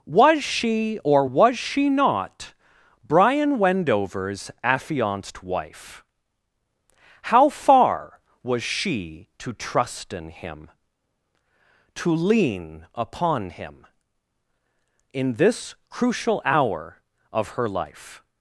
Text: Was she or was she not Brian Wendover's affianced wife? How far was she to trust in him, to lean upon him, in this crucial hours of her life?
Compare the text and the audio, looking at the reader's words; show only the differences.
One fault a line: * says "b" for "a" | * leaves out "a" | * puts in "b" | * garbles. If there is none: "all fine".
* says "hour" for "hours"